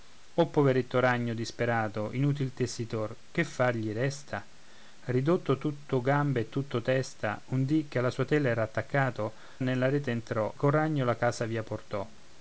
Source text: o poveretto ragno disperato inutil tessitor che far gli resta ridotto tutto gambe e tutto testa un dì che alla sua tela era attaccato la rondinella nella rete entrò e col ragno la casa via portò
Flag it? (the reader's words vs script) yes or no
yes